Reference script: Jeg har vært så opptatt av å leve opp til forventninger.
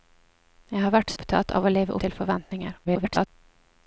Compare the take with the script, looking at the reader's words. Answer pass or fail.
fail